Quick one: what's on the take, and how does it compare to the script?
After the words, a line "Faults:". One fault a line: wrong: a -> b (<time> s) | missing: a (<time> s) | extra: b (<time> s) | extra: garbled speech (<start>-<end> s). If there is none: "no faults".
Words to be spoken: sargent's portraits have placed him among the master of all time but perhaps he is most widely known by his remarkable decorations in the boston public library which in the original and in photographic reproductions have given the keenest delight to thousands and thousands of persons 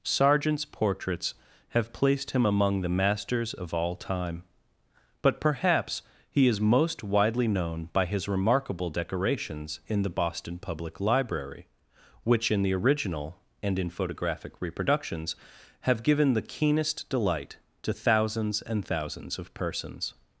sargent's portraits have placed him among the masters of all time but perhaps he is most widely known by his remarkable decorations in the boston public library which in the original and in photographic reproductions have given the keenest delight to thousands and thousands of persons
Faults:
wrong: master -> masters (2.9 s)